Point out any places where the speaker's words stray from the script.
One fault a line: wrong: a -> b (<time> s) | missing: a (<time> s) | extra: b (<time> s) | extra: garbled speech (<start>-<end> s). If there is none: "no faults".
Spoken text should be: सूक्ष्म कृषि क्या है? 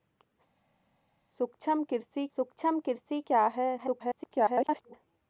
extra: सूक्ष्म कृषि (2.4 s)
extra: garbled speech (3.8-4.9 s)